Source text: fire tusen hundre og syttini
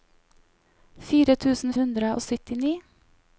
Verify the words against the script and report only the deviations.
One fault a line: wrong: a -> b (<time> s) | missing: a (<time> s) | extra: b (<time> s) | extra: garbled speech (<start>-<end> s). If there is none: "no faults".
no faults